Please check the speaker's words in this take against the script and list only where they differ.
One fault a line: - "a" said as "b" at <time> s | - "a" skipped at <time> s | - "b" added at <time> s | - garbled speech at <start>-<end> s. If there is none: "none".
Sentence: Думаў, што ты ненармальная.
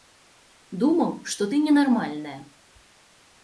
none